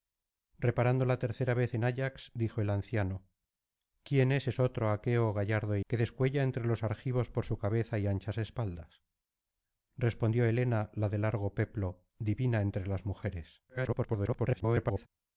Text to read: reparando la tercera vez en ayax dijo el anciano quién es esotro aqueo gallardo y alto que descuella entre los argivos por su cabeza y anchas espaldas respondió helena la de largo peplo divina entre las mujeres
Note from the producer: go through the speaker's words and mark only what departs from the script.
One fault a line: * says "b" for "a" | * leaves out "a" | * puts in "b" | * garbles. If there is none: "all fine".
* leaves out "alto"
* garbles